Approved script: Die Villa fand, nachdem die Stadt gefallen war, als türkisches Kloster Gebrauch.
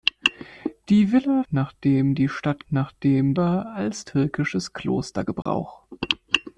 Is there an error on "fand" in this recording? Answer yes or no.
yes